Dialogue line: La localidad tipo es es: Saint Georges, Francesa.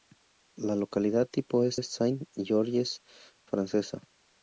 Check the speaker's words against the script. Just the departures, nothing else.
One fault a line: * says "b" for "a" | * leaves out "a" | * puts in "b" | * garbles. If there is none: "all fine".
all fine